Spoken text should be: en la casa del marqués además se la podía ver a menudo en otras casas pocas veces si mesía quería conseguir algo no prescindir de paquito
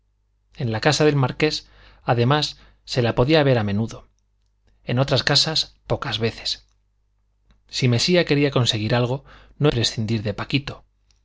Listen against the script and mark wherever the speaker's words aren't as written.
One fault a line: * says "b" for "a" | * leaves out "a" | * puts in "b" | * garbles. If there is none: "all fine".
all fine